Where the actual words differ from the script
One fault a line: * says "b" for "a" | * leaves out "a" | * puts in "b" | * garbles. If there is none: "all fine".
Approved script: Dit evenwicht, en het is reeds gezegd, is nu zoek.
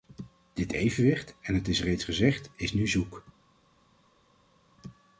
all fine